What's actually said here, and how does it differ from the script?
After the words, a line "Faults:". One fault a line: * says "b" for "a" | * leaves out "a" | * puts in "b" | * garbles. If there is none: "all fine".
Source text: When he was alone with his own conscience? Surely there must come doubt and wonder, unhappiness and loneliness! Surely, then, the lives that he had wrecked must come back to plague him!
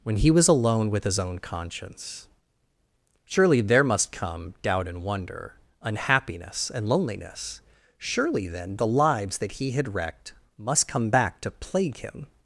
When he was alone with his own conscience? Surely there must come doubt and wonder, unhappiness and loneliness! Surely, then, the lives that he had wrecked must come back to plague him!
Faults:
all fine